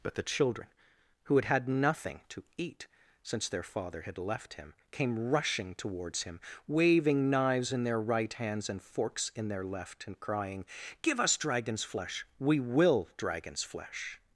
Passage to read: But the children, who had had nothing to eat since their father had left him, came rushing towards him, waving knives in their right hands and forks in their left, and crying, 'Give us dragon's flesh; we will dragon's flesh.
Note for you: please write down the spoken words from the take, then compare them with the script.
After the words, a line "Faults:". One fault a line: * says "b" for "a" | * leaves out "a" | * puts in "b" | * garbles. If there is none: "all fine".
But the children, who had had nothing to eat since their father had left him, came rushing towards him, waving knives in their right hands and forks in their left, and crying, 'Give us dragon's flesh; we will dragon's flesh.
Faults:
all fine